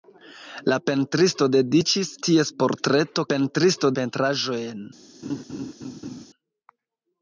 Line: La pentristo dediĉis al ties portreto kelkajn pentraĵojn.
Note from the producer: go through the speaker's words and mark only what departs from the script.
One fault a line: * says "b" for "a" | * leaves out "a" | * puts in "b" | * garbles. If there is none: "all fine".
* leaves out "al"
* says "pentristo" for "kelkajn"